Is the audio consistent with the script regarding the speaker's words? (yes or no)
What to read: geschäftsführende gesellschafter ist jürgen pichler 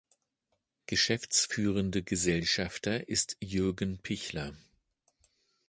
yes